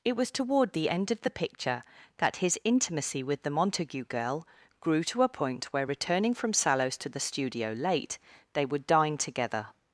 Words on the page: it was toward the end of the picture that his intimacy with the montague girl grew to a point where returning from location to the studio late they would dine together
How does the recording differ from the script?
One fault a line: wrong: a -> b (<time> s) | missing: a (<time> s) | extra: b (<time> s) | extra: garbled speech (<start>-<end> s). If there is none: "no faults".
wrong: location -> sallows (6.5 s)